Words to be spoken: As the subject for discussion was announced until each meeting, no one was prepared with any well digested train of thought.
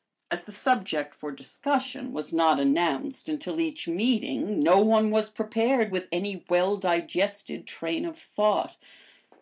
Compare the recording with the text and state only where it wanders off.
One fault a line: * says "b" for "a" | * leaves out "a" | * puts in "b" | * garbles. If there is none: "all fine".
* puts in "not"